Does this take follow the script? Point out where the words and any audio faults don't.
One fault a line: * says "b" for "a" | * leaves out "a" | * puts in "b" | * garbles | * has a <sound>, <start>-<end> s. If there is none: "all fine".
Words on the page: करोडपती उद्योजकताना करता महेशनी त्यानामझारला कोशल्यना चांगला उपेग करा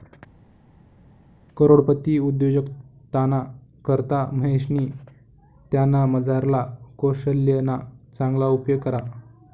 all fine